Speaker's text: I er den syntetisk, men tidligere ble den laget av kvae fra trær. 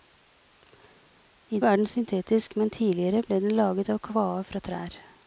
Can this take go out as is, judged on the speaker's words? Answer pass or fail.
pass